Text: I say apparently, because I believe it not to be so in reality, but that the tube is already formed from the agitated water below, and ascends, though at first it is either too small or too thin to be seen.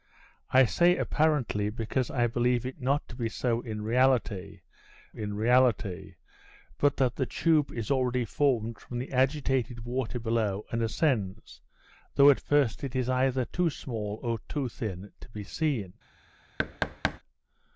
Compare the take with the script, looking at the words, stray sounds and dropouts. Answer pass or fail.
fail